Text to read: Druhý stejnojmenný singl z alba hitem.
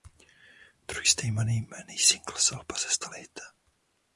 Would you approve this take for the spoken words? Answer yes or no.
no